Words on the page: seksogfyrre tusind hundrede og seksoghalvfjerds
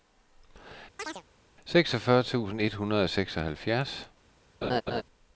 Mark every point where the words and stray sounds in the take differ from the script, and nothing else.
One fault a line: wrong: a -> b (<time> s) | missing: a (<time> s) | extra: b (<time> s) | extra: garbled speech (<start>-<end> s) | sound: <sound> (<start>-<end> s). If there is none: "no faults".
sound: chirp (1.0-1.2 s)
extra: et (2.6 s)
sound: laugh (4.6-5.0 s)